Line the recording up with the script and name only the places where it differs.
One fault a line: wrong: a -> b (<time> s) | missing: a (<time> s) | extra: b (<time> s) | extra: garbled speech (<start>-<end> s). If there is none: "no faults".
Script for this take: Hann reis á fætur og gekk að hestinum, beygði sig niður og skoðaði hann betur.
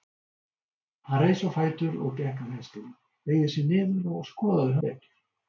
missing: hann (4.8 s)